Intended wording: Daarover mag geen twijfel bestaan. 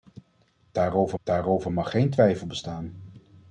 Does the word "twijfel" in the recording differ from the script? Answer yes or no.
no